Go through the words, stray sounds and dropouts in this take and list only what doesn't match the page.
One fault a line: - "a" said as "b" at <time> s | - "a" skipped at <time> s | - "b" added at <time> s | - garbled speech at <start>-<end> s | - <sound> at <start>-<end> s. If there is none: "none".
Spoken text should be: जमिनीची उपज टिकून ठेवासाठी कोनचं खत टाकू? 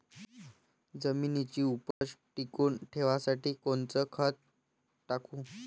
- dropout at 1.9-2.0 s